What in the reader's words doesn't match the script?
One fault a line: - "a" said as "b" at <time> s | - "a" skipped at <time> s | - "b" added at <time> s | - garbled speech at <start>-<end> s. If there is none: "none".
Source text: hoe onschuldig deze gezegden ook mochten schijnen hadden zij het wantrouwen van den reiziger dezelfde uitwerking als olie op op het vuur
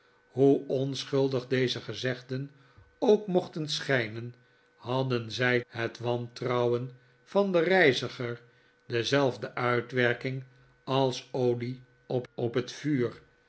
none